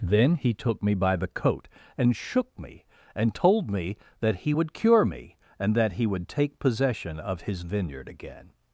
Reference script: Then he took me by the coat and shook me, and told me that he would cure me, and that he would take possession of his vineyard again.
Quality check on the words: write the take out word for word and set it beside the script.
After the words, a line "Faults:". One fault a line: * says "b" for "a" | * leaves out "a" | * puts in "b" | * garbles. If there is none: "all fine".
Then he took me by the coat and shook me, and told me that he would cure me, and that he would take possession of his vineyard again.
Faults:
all fine